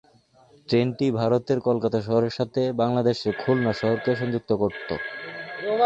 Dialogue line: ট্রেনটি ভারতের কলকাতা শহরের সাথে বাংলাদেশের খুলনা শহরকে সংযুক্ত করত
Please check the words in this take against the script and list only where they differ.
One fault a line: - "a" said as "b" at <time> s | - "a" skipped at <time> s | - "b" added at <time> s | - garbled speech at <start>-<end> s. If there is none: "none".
none